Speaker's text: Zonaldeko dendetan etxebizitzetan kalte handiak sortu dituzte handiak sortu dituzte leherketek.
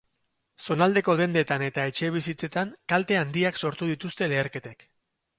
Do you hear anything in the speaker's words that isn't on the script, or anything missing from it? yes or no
yes